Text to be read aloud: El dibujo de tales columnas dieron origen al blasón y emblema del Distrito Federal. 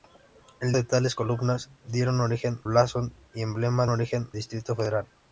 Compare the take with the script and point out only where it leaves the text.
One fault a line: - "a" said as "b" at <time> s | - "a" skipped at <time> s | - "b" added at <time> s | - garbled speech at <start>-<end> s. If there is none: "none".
- "dibujo" skipped at 0.7 s
- "al" skipped at 2.6 s
- "del" said as "origen" at 3.9 s